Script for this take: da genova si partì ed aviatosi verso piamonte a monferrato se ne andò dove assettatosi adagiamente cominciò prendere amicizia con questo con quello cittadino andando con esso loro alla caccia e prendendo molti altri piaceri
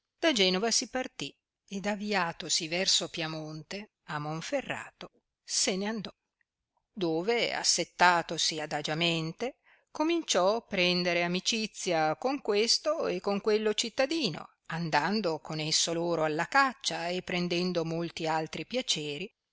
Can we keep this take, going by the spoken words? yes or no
no